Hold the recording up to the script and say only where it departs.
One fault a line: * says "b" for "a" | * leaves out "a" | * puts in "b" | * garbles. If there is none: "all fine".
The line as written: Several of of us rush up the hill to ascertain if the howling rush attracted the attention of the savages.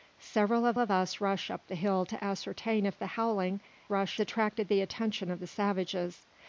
all fine